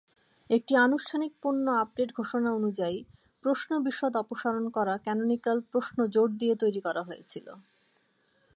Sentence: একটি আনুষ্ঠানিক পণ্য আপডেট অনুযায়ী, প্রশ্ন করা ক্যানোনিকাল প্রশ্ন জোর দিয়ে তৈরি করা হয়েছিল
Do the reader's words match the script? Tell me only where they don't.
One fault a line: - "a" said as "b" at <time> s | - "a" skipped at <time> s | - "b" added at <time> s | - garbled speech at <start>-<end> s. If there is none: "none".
- "ঘোষণা" added at 2.1 s
- "বিশদ অপসারণ" added at 3.9 s